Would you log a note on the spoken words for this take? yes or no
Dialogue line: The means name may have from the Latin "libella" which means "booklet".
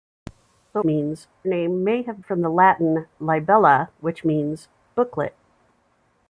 no